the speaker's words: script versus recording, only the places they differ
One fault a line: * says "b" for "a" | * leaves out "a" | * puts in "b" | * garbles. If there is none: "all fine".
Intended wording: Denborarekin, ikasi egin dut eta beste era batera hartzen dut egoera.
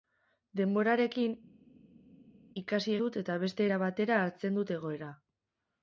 * leaves out "egin"